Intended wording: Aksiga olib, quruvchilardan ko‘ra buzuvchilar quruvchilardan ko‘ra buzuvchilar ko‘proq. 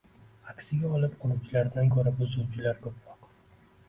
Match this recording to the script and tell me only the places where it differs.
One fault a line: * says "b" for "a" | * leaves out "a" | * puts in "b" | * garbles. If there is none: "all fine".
* leaves out "quruvchilardan ko‘ra buzuvchilar"